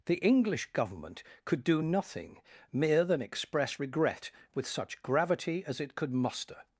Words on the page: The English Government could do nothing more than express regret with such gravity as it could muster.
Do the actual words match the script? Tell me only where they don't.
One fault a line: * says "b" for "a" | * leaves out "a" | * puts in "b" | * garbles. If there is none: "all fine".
* says "mere" for "more"